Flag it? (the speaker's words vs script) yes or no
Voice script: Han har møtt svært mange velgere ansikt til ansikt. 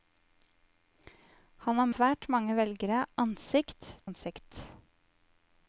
yes